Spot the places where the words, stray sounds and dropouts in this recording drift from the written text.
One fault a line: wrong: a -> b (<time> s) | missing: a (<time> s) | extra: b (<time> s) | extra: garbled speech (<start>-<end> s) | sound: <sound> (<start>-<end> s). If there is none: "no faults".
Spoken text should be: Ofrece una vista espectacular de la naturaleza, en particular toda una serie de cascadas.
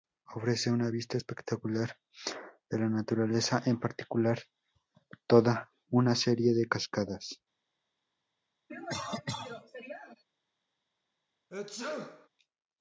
sound: cough (8.7-10.2 s)
sound: sneeze (11.5-12.3 s)